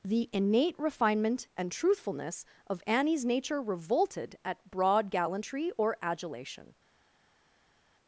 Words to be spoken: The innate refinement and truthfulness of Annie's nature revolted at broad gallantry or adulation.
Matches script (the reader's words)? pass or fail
pass